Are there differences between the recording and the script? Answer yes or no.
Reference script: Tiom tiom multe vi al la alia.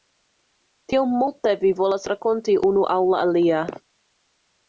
yes